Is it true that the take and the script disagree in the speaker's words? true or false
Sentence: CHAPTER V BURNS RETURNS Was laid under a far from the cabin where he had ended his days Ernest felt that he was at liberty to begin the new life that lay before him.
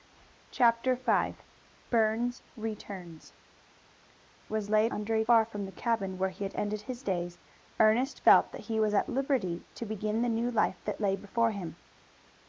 false